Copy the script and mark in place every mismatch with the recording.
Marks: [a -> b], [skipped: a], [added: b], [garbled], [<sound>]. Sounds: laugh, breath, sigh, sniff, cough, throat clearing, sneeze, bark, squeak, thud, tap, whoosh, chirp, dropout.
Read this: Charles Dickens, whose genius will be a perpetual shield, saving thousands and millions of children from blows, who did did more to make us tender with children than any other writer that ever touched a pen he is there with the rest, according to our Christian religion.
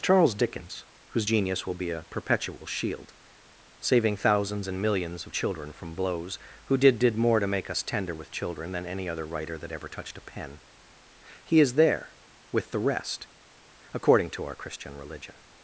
Charles Dickens, whose genius will be a perpetual shield, saving thousands and millions of children from blows, who did did more to make us tender with children than any other writer that ever touched a pen he is there with the rest, according to our Christian religion.